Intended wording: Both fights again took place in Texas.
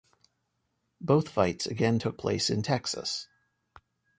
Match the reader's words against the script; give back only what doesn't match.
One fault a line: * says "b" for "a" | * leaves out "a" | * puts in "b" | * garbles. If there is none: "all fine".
all fine